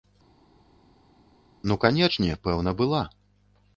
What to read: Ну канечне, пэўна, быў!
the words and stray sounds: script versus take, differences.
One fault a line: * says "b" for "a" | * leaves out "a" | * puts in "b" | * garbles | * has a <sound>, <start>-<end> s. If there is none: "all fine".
* says "была" for "быў"